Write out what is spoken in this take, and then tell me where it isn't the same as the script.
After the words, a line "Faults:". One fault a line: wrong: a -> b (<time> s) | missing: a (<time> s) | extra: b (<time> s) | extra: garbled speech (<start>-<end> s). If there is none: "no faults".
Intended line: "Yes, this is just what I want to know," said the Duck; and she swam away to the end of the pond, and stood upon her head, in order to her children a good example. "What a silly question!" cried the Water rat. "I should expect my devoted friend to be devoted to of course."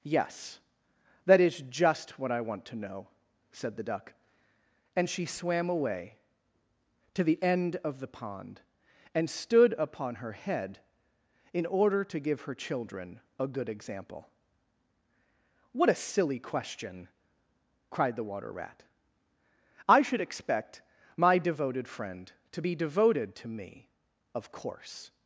"Yes, that is just what I want to know," said the Duck; and she swam away to the end of the pond, and stood upon her head, in order to give her children a good example. "What a silly question!" cried the Water rat. "I should expect my devoted friend to be devoted to me, of course."
Faults:
wrong: this -> that (1.2 s)
extra: give (12.2 s)
extra: me (23.5 s)